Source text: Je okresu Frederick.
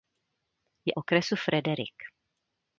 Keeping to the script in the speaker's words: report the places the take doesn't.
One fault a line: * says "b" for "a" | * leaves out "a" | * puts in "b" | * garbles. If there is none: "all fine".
all fine